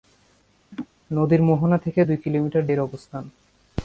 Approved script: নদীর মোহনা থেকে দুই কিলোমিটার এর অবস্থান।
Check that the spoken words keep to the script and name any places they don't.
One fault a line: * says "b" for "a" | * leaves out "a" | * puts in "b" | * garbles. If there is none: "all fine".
all fine